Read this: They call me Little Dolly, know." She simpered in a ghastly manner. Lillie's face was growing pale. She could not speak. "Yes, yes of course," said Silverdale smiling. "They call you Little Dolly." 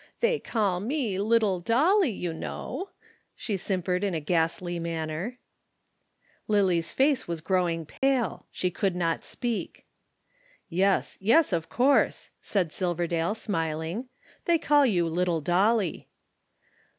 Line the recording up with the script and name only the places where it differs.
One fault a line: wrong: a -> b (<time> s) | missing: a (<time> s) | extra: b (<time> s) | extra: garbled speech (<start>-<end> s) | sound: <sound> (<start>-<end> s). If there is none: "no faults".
extra: you (2.1 s)
sound: dropout (8.0-8.0 s)